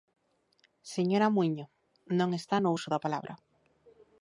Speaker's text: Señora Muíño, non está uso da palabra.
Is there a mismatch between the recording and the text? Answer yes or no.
yes